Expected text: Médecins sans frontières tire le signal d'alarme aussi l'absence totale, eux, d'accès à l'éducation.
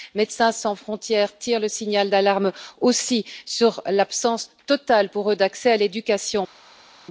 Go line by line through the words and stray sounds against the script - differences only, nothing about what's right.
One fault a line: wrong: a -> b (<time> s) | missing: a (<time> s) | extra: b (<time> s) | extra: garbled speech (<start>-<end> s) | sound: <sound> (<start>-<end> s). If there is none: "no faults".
extra: sur (3.5 s)
extra: pour (5.1 s)